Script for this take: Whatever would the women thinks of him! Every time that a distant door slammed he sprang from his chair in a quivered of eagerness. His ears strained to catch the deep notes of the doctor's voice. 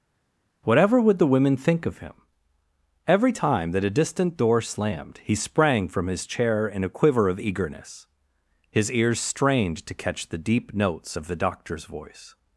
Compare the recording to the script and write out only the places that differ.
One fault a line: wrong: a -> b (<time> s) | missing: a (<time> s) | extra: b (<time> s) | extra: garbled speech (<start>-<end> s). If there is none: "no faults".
wrong: thinks -> think (1.6 s)
wrong: quivered -> quiver (6.9 s)